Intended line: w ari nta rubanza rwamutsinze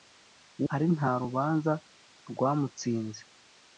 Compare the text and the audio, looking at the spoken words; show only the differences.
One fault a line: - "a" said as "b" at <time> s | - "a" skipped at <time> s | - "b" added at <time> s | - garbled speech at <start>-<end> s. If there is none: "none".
none